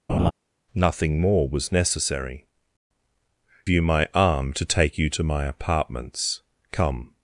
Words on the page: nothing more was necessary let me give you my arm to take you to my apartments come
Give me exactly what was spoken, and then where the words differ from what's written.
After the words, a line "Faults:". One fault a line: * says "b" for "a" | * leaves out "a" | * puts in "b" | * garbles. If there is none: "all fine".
nothing more was necessary you my arm to take you to my apartments come
Faults:
* leaves out "let me give"